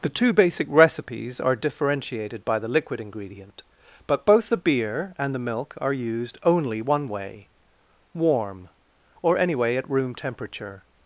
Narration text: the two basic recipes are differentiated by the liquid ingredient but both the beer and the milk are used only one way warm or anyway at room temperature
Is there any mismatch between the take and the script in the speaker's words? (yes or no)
no